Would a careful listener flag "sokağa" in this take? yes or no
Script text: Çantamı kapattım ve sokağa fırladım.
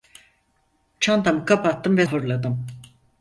yes